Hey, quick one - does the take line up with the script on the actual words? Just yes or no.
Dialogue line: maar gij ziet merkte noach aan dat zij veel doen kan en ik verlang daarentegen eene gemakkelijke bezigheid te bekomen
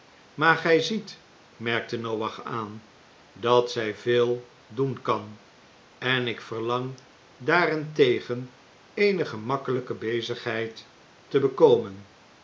yes